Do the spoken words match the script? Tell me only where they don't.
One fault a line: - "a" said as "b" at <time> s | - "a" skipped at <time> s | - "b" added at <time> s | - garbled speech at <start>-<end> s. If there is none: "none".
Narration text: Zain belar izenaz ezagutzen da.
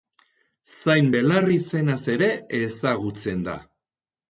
- "ere" added at 2.2 s